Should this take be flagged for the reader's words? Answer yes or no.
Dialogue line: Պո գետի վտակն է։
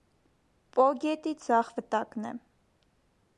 yes